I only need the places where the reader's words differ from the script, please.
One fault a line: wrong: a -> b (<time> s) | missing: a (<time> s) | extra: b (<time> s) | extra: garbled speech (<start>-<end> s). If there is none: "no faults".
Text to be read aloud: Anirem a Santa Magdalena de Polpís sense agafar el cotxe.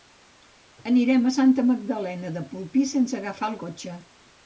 no faults